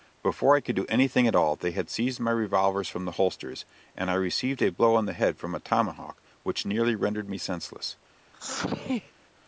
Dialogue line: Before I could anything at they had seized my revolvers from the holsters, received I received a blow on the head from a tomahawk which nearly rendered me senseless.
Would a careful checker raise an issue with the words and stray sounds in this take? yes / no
yes